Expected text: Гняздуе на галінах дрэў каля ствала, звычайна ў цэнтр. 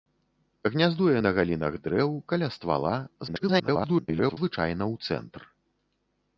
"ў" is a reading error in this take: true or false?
false